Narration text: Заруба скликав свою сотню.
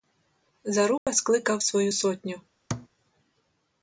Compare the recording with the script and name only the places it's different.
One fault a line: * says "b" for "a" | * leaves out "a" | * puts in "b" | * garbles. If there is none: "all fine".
all fine